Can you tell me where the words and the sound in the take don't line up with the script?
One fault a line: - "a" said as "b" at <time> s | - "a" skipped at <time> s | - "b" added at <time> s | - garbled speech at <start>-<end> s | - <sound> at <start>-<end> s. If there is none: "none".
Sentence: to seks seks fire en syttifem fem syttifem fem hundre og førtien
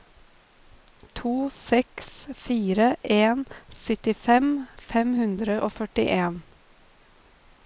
- "seks" skipped at 2.1 s
- "syttifem fem" skipped at 5.1 s